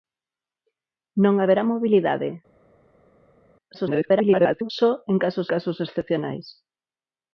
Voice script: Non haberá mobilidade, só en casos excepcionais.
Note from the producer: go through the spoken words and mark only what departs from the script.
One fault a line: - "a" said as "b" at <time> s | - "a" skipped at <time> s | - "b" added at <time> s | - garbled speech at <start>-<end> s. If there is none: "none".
- garbled speech at 3.7-4.7 s
- "casos" added at 5.5 s